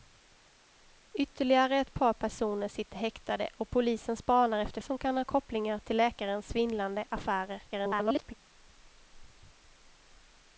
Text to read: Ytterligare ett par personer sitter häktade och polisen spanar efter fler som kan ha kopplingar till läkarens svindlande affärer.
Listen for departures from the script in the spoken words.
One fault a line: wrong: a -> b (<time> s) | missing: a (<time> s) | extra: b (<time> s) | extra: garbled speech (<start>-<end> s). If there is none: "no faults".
missing: fler (4.8 s)
extra: garbled speech (7.7-8.3 s)